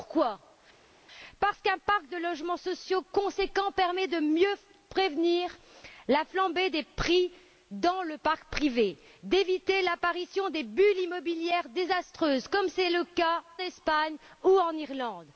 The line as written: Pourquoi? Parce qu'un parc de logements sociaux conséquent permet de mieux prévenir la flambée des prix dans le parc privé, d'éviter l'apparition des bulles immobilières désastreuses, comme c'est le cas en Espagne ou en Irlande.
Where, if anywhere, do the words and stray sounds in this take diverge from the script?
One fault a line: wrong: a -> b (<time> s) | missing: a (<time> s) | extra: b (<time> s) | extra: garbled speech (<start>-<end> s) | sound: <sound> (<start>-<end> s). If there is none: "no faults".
missing: en (13.4 s)